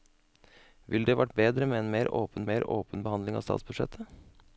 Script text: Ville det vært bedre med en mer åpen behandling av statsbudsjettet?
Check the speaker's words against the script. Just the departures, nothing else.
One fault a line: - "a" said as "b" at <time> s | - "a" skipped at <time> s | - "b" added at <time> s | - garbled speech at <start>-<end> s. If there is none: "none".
- "mer åpen" added at 2.5 s